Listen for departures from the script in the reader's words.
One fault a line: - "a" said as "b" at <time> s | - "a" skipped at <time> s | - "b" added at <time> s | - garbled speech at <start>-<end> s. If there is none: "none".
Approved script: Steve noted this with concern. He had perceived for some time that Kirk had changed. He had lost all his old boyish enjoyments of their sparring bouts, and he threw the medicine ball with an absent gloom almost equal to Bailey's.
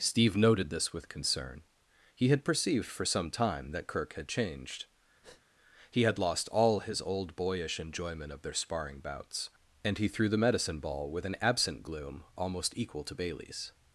- "enjoyments" said as "enjoyment" at 7.8 s